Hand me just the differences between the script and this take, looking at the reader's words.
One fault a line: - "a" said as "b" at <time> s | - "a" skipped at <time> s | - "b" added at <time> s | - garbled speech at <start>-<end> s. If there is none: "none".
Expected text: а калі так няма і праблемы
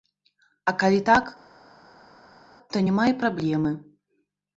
- "то" added at 2.7 s